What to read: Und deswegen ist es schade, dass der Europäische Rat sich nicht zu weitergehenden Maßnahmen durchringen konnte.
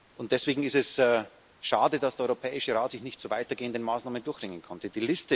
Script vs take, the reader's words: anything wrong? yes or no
no